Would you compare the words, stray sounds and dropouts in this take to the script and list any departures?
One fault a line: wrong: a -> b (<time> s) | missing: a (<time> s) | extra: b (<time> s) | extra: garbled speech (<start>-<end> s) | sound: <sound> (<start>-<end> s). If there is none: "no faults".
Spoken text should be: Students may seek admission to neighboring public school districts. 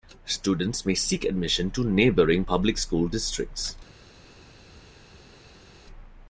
no faults